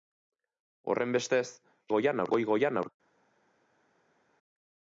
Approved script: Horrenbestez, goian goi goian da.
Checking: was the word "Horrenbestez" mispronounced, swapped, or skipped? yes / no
no